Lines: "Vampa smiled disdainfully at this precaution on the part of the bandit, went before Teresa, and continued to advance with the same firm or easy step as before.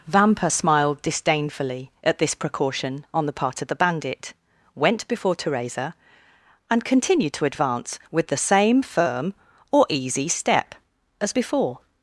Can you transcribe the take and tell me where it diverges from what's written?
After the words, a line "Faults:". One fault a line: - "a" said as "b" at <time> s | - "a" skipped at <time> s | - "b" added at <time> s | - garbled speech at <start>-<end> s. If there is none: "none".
"Vampa smiled disdainfully at this precaution on the part of the bandit, went before Teresa, and continued to advance with the same firm or easy step as before.
Faults:
none